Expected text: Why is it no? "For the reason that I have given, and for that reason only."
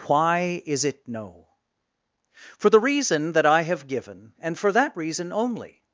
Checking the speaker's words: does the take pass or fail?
pass